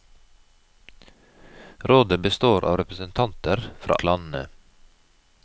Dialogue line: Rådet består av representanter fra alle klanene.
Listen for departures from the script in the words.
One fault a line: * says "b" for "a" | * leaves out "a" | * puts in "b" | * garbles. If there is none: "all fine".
* leaves out "alle"